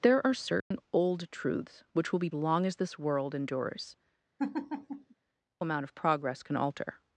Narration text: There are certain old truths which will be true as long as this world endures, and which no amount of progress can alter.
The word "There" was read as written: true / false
true